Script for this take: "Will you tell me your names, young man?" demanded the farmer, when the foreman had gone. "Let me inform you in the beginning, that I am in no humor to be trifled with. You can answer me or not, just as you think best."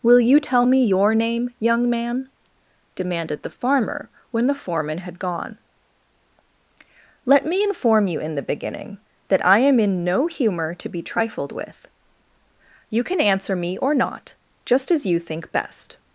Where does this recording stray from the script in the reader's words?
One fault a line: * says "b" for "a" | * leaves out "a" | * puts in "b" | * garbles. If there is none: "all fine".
* says "name" for "names"